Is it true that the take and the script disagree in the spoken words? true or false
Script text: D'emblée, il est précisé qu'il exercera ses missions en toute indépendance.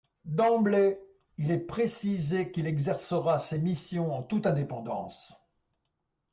false